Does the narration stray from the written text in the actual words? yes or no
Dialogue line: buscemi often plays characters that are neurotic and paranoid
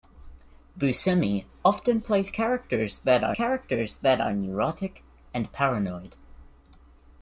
yes